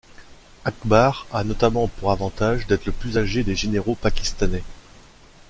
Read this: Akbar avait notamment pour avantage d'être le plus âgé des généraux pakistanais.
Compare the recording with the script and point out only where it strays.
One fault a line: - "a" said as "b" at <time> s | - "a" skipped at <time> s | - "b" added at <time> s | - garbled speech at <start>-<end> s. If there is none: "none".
- "avait" said as "a" at 1.3 s